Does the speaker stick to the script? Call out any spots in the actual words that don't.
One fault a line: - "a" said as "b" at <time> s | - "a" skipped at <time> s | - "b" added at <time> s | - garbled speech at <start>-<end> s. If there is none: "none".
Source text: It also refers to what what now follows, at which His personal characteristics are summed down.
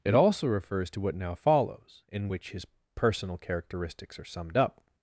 - "what" skipped at 1.1 s
- "at" said as "in" at 2.1 s
- "down" said as "up" at 4.6 s